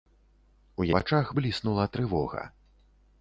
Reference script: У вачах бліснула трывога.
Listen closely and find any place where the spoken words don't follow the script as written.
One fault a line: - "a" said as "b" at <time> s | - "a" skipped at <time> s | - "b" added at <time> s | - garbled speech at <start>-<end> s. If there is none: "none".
none